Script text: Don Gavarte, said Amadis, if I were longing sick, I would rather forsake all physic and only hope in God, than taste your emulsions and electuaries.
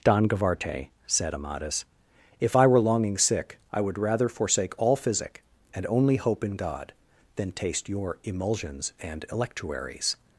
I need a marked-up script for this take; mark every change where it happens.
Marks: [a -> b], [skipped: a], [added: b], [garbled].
Don Gavarte, said Amadis, if I were longing sick, I would rather forsake all physic and only hope in God, than taste your emulsions and electuaries.